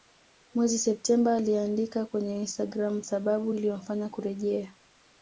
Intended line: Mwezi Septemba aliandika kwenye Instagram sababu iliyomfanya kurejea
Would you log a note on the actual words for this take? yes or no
no